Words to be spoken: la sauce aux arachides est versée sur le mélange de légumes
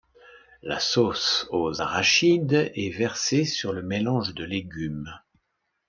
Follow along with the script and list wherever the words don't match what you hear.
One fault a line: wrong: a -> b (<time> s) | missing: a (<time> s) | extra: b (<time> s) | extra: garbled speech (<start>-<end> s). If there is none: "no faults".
no faults